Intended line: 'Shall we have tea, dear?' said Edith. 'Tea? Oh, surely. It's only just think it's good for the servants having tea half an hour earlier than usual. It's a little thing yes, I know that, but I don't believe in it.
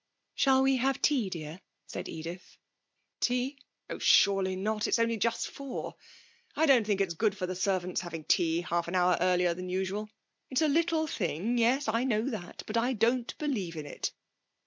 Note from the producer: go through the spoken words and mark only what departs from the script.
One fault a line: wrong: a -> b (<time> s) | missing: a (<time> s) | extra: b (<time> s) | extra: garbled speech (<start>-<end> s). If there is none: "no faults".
extra: not (4.5 s)
extra: four I don't (5.5 s)